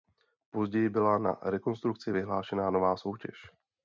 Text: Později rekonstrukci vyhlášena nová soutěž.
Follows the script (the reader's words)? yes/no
no